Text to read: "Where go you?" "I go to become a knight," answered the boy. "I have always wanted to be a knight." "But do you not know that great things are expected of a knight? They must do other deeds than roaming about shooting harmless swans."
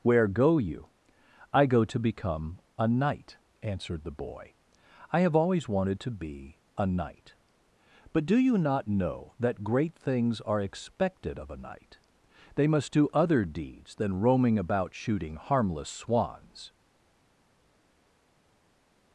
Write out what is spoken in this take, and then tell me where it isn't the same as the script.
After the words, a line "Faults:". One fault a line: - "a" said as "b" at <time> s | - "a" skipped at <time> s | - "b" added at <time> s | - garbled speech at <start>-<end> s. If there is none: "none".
"Where go you?" "I go to become a knight," answered the boy. "I have always wanted to be a knight." "But do you not know that great things are expected of a knight? They must do other deeds than roaming about shooting harmless swans."
Faults:
none